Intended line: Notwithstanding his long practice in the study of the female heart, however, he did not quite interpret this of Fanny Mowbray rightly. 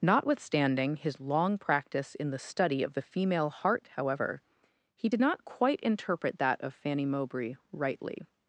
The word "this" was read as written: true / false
false